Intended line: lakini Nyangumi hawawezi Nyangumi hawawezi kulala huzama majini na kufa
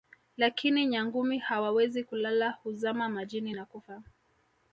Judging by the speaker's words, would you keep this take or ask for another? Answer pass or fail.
fail